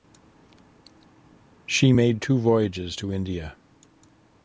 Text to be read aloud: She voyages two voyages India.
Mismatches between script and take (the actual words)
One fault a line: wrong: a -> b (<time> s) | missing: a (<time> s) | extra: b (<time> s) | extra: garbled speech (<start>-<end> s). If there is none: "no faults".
wrong: voyages -> made (1.9 s)
extra: to (3.0 s)